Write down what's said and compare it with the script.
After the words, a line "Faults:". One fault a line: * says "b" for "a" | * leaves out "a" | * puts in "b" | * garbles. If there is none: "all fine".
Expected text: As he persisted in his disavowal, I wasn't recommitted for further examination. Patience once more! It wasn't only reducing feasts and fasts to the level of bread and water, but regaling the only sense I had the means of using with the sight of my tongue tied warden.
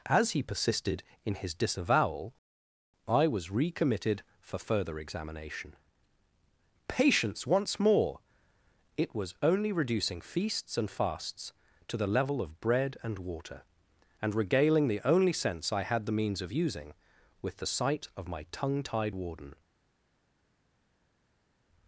As he persisted in his disavowal, I was recommitted for further examination. Patience once more! It was only reducing feasts and fasts to the level of bread and water, and regaling the only sense I had the means of using with the sight of my tongue tied warden.
Faults:
* says "was" for "wasn't"
* says "was" for "wasn't"
* says "and" for "but"